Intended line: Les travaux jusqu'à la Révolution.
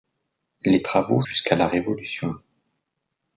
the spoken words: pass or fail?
pass